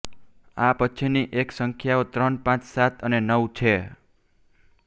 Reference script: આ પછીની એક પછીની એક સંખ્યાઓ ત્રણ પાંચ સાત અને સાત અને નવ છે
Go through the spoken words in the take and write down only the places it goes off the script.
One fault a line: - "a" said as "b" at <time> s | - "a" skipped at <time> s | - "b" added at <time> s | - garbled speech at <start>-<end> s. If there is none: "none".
- "પછીની એક" skipped at 1.5 s
- "સાત અને" skipped at 3.2 s